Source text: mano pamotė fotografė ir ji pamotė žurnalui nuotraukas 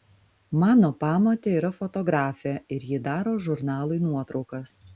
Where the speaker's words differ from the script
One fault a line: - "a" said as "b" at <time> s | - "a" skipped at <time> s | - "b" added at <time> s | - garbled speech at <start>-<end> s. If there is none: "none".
- "yra" added at 1.6 s
- "pamotė" said as "daro" at 3.1 s